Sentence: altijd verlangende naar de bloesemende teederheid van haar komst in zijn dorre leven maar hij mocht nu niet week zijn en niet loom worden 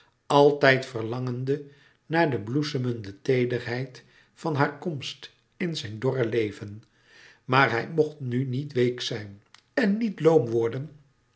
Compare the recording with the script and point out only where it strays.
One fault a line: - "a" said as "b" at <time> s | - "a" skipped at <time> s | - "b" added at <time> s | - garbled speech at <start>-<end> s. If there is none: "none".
none